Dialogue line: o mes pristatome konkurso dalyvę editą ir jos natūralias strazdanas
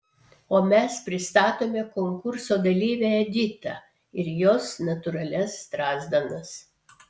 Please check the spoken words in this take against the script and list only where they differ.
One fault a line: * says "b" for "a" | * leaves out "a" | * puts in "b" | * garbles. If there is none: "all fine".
all fine